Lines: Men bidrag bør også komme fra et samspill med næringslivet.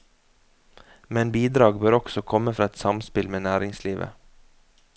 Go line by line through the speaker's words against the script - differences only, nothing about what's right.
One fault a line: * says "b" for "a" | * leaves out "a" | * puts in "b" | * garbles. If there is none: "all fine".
all fine